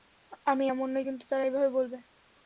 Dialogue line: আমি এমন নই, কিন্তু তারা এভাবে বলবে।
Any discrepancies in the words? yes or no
no